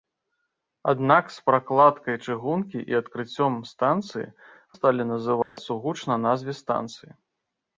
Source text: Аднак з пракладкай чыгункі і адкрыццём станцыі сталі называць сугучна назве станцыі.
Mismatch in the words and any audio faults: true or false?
true